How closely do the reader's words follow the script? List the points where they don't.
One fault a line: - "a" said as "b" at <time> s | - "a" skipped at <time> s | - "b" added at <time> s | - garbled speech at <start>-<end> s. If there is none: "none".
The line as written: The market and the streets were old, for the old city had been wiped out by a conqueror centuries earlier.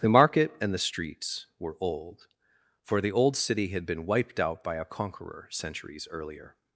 none